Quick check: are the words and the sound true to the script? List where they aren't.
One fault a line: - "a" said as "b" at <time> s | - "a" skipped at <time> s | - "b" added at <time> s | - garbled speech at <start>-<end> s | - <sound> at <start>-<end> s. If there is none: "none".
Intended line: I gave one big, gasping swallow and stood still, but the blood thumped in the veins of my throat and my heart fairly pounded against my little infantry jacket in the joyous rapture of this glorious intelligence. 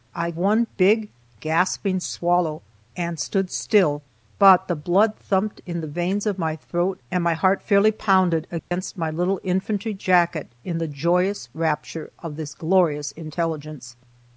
- "gave" skipped at 0.3 s
- dropout at 8.6-8.7 s